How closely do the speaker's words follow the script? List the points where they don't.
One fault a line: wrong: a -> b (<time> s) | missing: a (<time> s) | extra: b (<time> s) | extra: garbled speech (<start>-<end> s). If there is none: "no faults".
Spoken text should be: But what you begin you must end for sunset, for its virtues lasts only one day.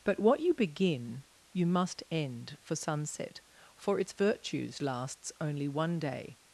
no faults